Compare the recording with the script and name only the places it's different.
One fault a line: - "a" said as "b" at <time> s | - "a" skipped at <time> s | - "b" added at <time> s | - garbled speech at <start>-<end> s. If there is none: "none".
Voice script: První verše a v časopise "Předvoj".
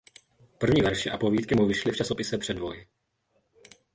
- "povídky mu vyšly" added at 1.2 s